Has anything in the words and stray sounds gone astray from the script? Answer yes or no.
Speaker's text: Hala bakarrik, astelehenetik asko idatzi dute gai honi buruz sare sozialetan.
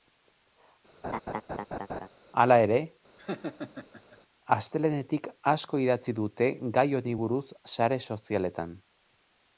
yes